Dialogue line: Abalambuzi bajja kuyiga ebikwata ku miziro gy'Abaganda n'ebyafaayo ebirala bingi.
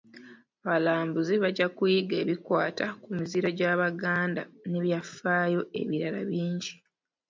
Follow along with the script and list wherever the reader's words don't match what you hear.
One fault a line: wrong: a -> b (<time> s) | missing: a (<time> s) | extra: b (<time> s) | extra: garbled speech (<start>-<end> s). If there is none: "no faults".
no faults